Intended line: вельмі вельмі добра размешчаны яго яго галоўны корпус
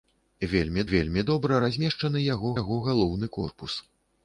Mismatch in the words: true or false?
false